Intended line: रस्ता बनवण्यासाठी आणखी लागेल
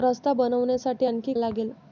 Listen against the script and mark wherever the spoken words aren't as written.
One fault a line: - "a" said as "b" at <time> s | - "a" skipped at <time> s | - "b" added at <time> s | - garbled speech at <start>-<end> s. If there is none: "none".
none